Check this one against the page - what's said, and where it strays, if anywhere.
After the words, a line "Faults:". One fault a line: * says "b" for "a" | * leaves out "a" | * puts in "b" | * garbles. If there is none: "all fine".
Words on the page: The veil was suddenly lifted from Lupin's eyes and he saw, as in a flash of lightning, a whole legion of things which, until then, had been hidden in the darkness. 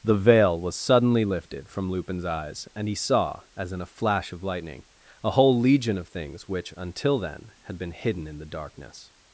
The veil was suddenly lifted from Lupin's eyes and he saw, as in a flash of lightning, a whole legion of things which, until then, had been hidden in the darkness.
Faults:
all fine